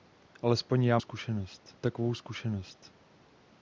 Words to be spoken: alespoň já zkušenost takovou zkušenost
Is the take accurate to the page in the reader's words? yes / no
yes